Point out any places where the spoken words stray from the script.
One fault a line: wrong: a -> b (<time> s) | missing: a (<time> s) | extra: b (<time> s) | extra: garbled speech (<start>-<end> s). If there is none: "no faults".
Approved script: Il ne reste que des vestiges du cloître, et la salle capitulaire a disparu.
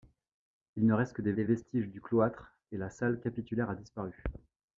extra: des (1.3 s)